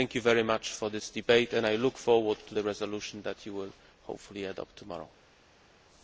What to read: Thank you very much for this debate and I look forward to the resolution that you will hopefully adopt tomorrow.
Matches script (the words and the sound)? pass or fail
pass